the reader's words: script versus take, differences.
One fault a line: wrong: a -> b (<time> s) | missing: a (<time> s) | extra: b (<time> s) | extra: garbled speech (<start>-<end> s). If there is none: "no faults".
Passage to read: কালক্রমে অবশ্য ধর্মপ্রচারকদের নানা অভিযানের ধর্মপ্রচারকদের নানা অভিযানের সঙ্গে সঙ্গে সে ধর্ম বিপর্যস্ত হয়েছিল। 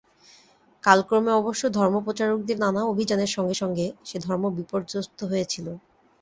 missing: ধর্মপ্রচারকদের নানা অভিযানের (3.3 s)